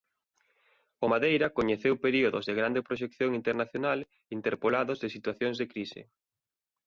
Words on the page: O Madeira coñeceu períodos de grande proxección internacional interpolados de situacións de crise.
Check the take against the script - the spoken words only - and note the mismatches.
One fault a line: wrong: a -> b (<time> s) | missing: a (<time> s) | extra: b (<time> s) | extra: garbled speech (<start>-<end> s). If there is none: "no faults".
no faults